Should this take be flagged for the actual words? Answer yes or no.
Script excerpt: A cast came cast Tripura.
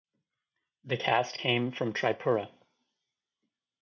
yes